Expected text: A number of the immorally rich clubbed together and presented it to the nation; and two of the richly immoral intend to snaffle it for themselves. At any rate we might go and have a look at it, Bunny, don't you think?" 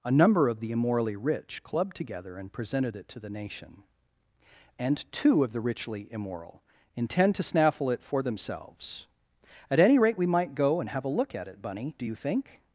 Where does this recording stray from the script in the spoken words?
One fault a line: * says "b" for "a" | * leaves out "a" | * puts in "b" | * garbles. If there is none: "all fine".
* says "do" for "don't"